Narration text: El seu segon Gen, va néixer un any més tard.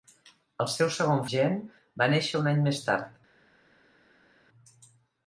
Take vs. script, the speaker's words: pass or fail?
pass